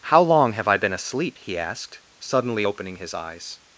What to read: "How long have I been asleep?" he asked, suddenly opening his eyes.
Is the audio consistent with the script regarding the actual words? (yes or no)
yes